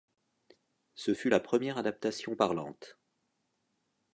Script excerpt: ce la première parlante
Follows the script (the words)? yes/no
no